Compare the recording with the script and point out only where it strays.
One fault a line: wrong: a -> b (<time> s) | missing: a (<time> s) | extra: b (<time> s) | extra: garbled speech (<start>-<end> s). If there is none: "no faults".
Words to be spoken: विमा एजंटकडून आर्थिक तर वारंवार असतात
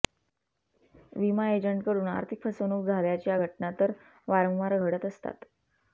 extra: फसवणूक झाल्याच्या घटना (2.4 s)
extra: घडत (4.8 s)